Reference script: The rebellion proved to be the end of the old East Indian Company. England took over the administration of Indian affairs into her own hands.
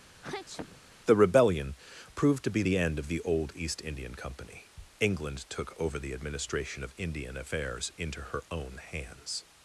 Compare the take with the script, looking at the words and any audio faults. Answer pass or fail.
fail